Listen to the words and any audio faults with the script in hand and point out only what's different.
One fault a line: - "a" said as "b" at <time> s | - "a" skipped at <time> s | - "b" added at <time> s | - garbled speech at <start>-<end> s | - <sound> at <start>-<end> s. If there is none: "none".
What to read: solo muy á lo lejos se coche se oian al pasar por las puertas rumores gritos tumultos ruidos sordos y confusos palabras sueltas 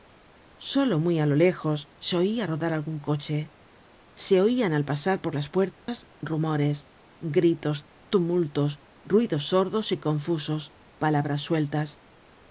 - "oia rodar algun" added at 2.2 s
- dropout at 5.7-5.9 s